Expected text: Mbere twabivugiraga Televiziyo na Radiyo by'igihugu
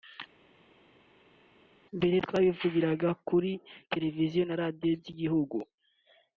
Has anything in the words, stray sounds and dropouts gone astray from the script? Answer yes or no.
yes